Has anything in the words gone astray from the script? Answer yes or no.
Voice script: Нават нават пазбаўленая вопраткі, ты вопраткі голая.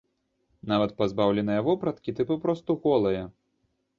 yes